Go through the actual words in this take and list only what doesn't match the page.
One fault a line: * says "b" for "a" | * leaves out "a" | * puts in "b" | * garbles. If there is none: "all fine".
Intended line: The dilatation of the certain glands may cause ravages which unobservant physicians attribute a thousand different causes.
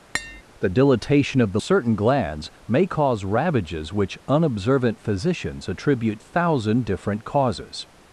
all fine